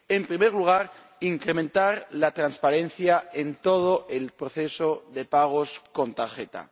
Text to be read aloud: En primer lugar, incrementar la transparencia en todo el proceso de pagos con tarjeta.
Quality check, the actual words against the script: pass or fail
pass